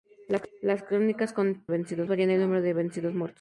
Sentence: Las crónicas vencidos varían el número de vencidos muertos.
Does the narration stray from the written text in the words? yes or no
no